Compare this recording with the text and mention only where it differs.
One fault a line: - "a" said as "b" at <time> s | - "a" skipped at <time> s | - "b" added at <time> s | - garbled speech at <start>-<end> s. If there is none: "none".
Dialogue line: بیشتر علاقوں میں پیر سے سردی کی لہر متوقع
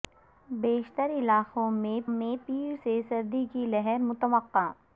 - "میں" added at 2.1 s